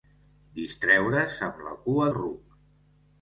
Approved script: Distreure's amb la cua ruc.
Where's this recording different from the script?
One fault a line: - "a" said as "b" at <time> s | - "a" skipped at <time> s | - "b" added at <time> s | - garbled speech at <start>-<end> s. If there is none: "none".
none